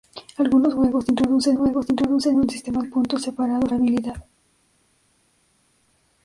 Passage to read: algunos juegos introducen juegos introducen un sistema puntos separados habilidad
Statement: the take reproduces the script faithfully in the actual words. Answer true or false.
true